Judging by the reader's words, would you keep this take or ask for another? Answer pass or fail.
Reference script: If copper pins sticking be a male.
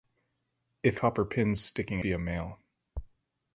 pass